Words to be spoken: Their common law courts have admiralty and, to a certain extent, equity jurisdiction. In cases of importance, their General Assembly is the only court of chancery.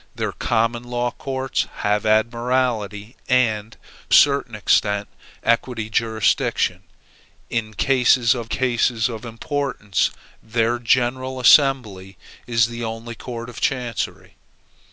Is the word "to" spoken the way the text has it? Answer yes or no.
no